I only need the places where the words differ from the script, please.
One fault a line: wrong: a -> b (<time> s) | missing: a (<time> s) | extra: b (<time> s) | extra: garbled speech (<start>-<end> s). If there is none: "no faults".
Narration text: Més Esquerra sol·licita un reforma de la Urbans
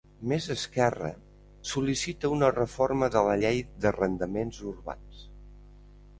wrong: un -> una (2.4 s)
extra: Llei d'Arrendaments (3.4 s)